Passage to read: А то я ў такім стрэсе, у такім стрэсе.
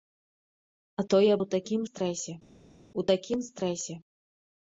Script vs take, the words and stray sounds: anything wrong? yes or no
no